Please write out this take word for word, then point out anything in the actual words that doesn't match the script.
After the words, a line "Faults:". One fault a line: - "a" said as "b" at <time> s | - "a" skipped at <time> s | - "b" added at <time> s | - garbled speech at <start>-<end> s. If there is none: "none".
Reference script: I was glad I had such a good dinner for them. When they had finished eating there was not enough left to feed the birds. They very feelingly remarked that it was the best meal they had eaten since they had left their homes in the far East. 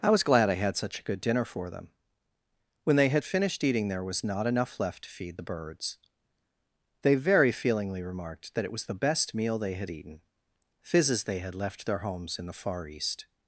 I was glad I had such a good dinner for them. When they had finished eating there was not enough left to feed the birds. They very feelingly remarked that it was the best meal they had eaten fizzes they had left their homes in the far East.
Faults:
- "since" said as "fizzes" at 10.8 s